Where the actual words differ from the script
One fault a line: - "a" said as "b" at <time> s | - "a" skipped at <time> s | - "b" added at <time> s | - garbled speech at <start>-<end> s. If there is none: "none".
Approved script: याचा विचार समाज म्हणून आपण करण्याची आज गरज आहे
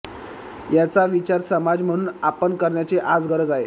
none